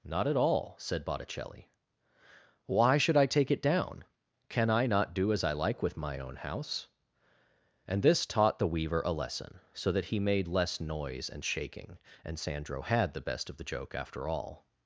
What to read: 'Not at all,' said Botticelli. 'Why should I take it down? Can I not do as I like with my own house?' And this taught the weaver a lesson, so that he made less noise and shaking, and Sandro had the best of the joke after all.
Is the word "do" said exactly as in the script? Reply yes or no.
yes